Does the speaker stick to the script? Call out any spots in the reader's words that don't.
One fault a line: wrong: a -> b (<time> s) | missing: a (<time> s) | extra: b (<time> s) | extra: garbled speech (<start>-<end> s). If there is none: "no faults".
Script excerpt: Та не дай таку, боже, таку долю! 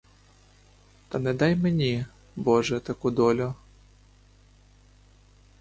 wrong: таку -> мені (1.6 s)